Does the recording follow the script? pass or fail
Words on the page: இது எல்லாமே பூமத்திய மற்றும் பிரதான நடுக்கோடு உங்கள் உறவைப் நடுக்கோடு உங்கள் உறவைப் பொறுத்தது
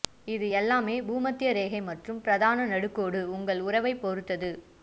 fail